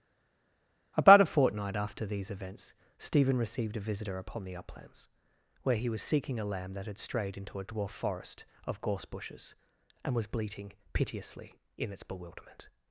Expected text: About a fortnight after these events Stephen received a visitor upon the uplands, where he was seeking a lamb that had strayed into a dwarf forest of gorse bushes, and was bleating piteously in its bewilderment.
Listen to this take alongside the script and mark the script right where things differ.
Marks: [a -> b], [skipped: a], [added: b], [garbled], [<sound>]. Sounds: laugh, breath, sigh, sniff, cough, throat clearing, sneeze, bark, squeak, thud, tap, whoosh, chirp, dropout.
About a fortnight after these events Stephen received a visitor upon the uplands, where he was seeking a lamb that had strayed into a dwarf forest of gorse bushes, and was bleating piteously in its bewilderment.